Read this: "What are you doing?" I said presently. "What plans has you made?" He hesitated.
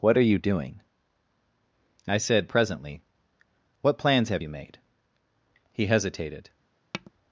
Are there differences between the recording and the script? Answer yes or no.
yes